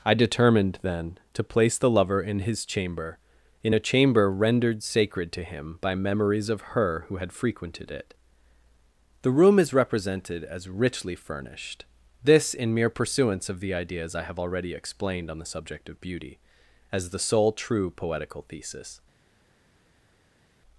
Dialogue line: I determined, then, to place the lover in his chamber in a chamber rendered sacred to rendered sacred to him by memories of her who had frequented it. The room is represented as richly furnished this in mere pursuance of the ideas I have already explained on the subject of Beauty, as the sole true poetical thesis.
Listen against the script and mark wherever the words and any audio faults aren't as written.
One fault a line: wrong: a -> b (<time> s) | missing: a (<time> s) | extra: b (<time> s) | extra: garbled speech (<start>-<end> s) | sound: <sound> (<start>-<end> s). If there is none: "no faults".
missing: rendered sacred to (5.4 s)